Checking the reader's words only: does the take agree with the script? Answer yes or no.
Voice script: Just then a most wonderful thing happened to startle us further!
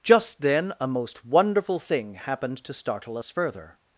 yes